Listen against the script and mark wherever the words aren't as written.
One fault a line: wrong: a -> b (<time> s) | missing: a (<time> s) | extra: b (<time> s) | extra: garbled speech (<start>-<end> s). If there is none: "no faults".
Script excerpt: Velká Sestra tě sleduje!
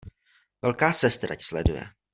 no faults